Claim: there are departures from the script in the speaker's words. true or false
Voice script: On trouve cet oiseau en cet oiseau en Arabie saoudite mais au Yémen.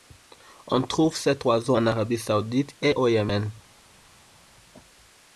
true